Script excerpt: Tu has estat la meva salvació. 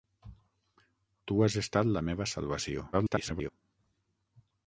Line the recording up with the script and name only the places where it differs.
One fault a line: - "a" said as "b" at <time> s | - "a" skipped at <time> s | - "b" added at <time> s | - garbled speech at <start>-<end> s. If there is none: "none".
- garbled speech at 2.9-3.5 s